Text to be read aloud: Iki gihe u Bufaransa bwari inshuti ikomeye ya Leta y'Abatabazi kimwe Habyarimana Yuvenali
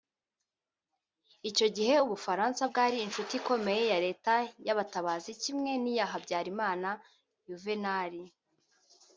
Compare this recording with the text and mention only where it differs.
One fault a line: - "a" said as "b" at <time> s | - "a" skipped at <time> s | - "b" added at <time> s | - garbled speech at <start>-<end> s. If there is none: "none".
- "Iki" said as "Icyo" at 1.5 s
- "n'iya" added at 5.8 s